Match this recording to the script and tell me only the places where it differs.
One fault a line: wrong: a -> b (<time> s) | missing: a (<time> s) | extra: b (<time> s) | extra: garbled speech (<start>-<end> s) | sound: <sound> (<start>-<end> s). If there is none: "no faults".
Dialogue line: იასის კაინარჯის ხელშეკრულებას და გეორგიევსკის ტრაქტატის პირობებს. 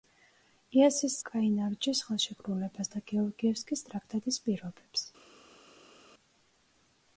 no faults